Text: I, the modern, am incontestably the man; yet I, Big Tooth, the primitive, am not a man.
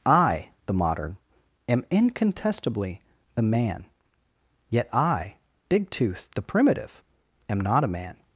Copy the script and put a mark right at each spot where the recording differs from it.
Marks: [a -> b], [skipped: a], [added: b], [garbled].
I, the modern, am incontestably the man; yet I, Big Tooth, the primitive, am not a man.